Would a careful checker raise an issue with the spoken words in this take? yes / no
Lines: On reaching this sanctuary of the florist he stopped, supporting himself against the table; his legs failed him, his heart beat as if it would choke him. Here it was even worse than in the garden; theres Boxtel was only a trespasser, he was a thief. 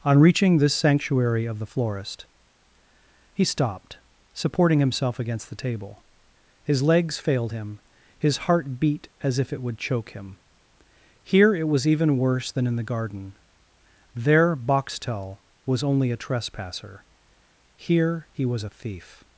yes